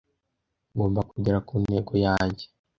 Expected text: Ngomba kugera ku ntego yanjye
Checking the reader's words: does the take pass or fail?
pass